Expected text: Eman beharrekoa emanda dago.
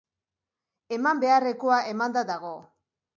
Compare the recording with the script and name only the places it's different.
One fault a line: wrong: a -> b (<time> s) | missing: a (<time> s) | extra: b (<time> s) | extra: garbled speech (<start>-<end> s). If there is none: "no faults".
no faults